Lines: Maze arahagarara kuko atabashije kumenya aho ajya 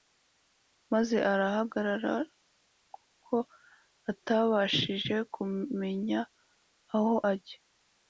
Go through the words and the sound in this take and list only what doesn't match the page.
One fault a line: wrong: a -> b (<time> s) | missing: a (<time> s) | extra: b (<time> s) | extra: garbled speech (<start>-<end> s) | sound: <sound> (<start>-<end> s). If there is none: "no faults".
no faults